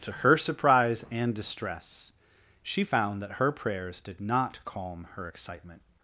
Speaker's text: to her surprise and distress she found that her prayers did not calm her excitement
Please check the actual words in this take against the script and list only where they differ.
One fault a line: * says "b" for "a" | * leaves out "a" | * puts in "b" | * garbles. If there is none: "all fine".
all fine